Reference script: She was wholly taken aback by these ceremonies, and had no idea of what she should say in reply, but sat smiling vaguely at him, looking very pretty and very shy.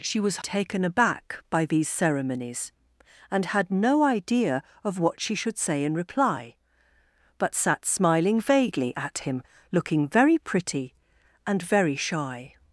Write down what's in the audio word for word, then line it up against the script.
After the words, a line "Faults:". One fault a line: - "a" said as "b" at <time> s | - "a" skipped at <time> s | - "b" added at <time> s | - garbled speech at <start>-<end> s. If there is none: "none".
She was taken aback by these ceremonies, and had no idea of what she should say in reply, but sat smiling vaguely at him, looking very pretty and very shy.
Faults:
- "wholly" skipped at 0.4 s